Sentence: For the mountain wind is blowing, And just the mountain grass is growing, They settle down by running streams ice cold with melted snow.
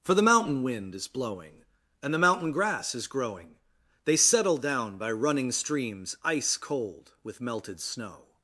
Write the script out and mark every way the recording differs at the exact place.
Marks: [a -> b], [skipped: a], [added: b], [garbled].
For the mountain wind is blowing, And [skipped: just] the mountain grass is growing, They settle down by running streams ice cold with melted snow.